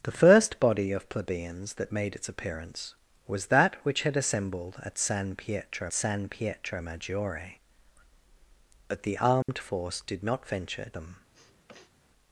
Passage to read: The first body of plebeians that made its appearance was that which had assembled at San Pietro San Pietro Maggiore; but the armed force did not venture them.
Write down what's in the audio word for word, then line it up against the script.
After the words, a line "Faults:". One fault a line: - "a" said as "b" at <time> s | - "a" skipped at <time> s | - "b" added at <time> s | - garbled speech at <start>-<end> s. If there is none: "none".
The first body of plebeians that made its appearance was that which had assembled at San Pietro San Pietro Maggiore; but the armed force did not venture them.
Faults:
none